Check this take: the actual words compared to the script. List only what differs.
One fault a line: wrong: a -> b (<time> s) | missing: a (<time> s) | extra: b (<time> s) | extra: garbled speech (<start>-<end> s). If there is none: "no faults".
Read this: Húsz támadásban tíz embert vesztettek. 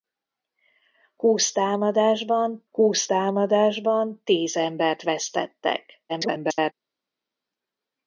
extra: húsz támadásban (2.7 s)
extra: garbled speech (6.1-6.7 s)